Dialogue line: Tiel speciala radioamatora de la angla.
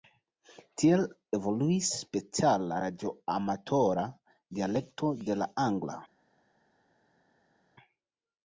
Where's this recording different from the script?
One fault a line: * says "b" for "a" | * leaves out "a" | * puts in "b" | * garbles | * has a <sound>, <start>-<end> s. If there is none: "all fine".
* puts in "evoluis"
* puts in "dialekto"